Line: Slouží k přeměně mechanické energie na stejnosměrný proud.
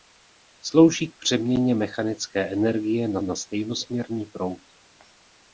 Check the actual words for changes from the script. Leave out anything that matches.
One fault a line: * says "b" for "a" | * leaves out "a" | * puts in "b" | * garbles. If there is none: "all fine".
* puts in "na"